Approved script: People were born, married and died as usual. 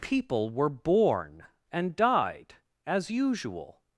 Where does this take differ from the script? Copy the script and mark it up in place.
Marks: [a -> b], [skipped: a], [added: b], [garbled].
People were born, [skipped: married] and died as usual.